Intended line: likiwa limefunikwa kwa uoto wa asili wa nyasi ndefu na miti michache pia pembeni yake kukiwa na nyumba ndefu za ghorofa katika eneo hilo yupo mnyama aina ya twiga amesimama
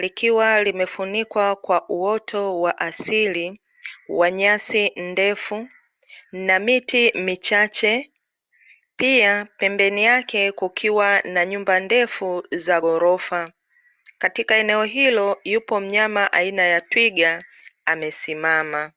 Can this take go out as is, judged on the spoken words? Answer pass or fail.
pass